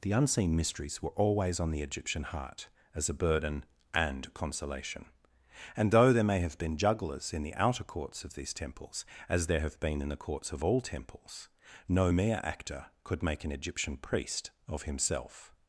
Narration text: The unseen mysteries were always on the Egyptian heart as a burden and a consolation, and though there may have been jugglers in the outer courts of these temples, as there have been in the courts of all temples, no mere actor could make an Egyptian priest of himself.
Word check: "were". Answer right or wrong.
right